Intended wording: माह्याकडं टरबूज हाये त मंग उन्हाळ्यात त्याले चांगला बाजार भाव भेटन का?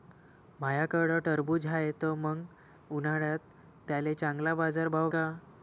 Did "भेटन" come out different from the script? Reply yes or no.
yes